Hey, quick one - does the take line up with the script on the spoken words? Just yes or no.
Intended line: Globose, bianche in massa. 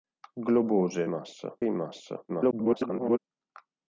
no